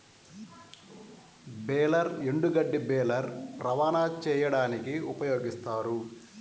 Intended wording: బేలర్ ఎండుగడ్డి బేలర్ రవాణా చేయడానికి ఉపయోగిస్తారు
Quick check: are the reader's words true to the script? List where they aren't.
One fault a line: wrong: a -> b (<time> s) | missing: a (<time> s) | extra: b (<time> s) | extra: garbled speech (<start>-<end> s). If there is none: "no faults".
no faults